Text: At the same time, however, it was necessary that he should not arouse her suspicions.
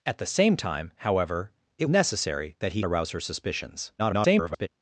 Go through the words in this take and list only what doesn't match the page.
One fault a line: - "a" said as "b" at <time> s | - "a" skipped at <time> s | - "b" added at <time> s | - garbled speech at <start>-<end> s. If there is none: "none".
- "was" skipped at 1.9 s
- "should not" skipped at 2.8 s
- garbled speech at 4.0-4.7 s